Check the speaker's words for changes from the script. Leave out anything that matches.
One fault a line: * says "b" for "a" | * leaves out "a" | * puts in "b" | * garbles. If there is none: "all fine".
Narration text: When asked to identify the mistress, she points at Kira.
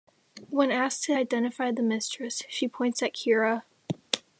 all fine